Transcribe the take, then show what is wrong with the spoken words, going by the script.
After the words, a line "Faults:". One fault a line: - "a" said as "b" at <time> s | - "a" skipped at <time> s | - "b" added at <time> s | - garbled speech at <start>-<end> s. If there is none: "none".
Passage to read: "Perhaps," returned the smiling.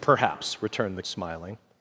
"Perhaps," returned the smiling.
Faults:
none